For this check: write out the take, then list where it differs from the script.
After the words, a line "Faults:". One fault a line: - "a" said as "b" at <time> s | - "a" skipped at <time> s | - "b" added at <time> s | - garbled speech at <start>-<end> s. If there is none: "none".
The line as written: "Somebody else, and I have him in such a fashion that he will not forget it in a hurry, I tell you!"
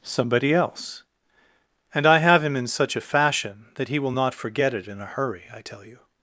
"Somebody else, and I have him in such a fashion that he will not forget it in a hurry, I tell you!"
Faults:
none